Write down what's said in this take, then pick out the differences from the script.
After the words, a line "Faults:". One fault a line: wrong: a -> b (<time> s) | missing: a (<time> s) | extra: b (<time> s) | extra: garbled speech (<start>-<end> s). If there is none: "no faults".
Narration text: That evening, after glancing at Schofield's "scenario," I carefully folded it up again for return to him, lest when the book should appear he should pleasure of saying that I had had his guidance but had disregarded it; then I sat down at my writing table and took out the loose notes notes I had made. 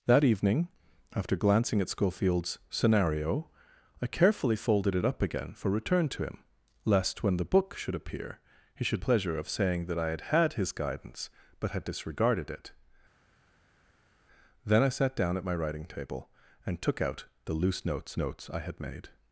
That evening, after glancing at Schofield's "scenario," I carefully folded it up again for return to him, lest when the book should appear he should pleasure of saying that I had had his guidance but had disregarded it; then I sat down at my writing table and took out the loose notes notes I had made.
Faults:
no faults